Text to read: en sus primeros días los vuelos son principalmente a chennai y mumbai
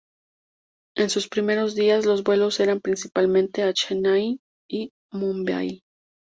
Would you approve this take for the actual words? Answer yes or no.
no